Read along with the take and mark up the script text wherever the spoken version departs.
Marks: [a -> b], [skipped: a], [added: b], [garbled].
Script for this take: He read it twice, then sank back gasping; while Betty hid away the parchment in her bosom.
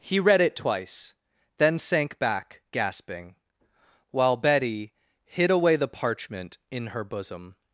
He read it twice, then sank back gasping; while Betty hid away the parchment in her bosom.